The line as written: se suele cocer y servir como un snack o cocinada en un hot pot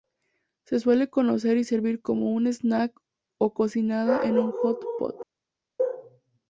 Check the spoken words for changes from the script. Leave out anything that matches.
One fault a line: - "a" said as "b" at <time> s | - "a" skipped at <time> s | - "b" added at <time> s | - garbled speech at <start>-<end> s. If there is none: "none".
none